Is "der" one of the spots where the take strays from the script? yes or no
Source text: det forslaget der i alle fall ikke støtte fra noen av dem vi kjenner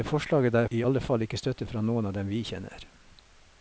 no